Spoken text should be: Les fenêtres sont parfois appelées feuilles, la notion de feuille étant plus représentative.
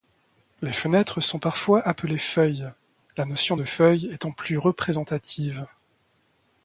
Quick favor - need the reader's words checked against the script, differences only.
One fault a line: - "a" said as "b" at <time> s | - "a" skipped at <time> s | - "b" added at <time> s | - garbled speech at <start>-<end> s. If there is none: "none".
none